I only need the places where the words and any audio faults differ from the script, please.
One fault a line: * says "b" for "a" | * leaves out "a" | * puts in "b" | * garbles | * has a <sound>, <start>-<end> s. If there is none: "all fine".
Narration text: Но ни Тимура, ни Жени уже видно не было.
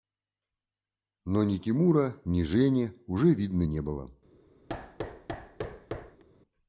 * has a thud, 4.7-6.2 s